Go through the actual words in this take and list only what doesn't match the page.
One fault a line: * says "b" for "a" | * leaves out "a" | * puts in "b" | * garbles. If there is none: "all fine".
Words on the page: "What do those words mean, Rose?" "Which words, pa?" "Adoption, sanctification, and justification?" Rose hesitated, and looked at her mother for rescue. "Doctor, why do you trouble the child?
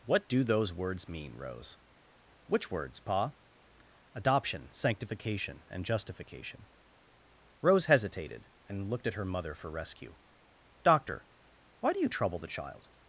all fine